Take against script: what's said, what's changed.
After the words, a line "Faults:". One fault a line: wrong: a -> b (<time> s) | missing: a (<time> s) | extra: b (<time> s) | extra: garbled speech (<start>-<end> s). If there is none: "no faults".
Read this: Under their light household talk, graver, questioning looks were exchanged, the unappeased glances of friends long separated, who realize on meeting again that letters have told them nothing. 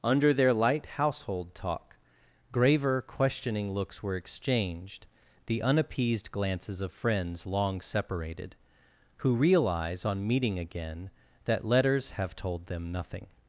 Under their light household talk, graver, questioning looks were exchanged, the unappeased glances of friends long separated, who realize on meeting again that letters have told them nothing.
Faults:
no faults